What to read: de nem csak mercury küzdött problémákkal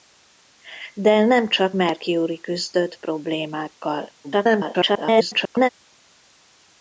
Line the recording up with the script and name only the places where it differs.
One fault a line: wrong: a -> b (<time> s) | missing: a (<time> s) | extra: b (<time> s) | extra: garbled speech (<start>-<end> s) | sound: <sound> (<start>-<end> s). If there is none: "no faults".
extra: garbled speech (4.2-5.7 s)